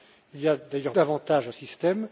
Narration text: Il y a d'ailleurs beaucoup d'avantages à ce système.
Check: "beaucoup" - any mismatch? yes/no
yes